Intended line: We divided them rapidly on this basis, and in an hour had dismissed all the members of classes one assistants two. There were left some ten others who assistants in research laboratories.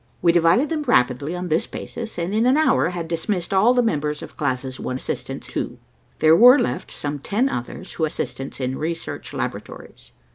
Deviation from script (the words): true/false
false